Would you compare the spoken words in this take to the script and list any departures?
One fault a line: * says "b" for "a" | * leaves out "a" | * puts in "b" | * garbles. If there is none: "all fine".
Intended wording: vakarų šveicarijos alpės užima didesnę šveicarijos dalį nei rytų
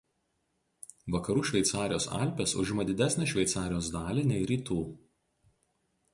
all fine